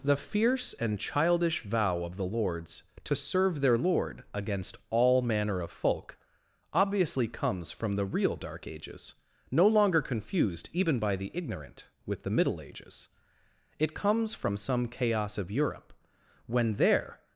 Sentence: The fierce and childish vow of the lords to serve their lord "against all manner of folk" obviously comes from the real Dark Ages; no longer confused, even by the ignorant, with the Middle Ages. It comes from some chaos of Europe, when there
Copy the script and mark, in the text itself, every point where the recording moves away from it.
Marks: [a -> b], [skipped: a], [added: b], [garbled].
The fierce and childish vow of the lords to serve their lord "against all manner of folk" obviously comes from the real Dark Ages; no longer confused, even by the ignorant, with the Middle Ages. It comes from some chaos of Europe, when there